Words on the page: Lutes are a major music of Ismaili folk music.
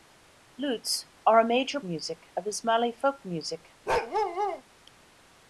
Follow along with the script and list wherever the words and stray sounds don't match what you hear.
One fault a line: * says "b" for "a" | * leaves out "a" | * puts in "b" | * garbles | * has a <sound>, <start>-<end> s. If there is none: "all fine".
* has a bark, 3.9-4.6 s